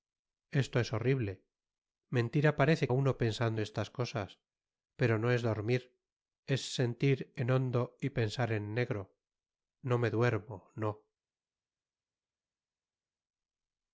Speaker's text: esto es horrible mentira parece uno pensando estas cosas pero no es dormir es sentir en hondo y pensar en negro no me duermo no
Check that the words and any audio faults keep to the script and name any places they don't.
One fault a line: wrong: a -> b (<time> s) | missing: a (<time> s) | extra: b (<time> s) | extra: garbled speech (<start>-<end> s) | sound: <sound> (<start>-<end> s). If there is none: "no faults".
no faults